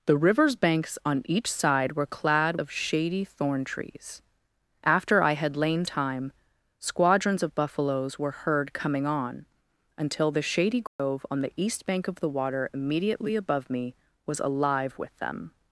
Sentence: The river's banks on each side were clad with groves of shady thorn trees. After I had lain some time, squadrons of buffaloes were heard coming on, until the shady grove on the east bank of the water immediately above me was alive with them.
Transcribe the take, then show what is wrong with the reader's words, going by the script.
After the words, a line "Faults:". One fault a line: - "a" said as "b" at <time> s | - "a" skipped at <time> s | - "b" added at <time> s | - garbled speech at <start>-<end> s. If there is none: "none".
The river's banks on each side were clad of shady thorn trees. After I had lain time, squadrons of buffaloes were heard coming on, until the shady grove on the east bank of the water immediately above me was alive with them.
Faults:
- "with groves" skipped at 2.5 s
- "some" skipped at 5.8 s